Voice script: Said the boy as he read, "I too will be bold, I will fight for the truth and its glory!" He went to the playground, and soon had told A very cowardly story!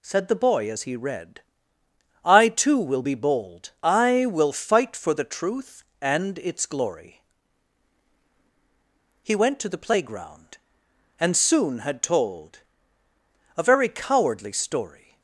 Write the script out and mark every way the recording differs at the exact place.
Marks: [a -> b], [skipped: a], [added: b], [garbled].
Said the boy as he read, "I too will be bold, I will fight for the truth and its glory!" He went to the playground, and soon had told A very cowardly story!